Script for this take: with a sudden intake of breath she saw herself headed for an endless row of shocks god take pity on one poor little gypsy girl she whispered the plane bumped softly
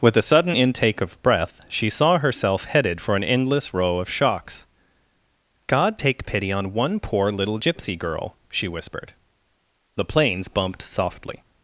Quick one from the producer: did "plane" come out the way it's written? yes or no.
no